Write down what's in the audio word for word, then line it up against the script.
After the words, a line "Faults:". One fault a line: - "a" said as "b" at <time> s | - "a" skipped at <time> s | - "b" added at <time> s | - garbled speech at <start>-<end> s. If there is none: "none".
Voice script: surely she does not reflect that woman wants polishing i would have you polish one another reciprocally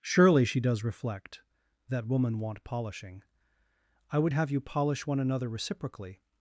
surely she does reflect that woman want polishing i would have you polish one another reciprocally
Faults:
- "not" skipped at 0.8 s
- "wants" said as "want" at 2.4 s